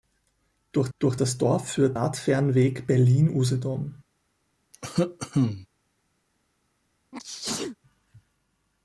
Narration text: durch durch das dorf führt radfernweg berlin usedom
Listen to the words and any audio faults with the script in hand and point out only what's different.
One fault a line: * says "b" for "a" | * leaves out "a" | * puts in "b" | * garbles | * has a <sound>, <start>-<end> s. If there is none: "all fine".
* has a cough, 4.7-5.7 s
* has a sneeze, 7.1-7.8 s